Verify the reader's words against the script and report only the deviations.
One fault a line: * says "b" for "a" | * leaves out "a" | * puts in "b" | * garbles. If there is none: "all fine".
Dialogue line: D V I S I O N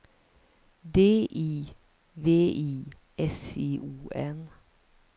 * puts in "I"